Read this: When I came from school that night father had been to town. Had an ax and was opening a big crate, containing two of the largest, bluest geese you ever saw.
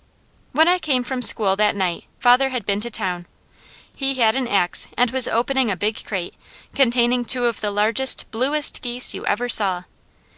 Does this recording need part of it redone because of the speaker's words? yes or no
yes